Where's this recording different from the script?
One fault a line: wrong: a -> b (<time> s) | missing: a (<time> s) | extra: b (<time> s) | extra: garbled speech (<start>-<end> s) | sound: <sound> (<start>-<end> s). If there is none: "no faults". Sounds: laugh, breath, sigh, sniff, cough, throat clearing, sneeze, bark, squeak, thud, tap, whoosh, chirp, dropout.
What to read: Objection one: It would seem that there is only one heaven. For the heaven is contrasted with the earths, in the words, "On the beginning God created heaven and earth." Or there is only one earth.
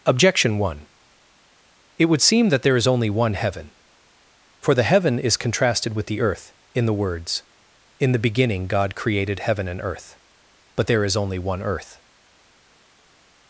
wrong: earths -> earth (6.2 s)
wrong: On -> In (8.0 s)
wrong: Or -> But (10.8 s)